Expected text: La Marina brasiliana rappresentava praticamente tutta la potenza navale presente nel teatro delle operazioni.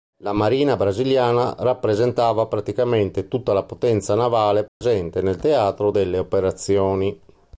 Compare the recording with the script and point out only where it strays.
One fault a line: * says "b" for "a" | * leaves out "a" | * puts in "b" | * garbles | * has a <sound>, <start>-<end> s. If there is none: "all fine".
* has a dropout, 4.7-4.8 s